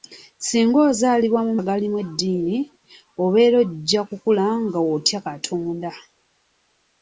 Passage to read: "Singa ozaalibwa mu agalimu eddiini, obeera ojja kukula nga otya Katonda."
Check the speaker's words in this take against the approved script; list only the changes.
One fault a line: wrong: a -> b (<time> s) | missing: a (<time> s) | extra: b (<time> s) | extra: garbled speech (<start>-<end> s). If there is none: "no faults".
no faults